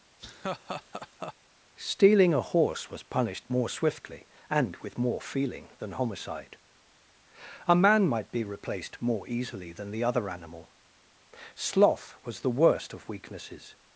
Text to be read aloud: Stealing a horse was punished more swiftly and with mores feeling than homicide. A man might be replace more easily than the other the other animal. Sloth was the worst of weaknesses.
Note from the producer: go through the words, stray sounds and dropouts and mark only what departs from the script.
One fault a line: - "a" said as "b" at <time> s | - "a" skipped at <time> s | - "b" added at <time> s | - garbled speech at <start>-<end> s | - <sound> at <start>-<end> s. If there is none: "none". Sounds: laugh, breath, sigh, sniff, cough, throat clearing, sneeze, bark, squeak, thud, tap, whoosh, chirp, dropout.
- laugh at 0.2-1.3 s
- "mores" said as "more" at 5.0 s
- "replace" said as "replaced" at 8.4 s
- "the other" skipped at 10.3 s